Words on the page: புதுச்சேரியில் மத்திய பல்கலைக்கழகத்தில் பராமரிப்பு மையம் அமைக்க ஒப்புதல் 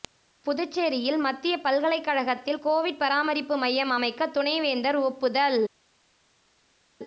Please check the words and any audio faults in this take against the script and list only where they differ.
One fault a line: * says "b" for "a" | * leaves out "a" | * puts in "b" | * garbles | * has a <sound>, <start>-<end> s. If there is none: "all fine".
* puts in "கோவிட்"
* puts in "துணைவேந்தர்"